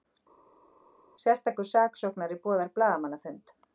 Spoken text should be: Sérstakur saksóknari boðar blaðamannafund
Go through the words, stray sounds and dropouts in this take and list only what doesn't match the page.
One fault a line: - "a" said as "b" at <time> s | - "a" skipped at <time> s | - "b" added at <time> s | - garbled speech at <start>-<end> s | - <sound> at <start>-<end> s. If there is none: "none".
none